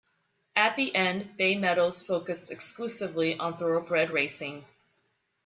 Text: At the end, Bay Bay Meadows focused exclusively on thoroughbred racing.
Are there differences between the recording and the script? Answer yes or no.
yes